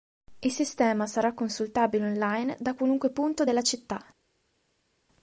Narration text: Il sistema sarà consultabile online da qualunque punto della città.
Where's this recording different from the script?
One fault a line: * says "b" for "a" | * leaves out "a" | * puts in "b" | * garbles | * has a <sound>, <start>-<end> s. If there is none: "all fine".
all fine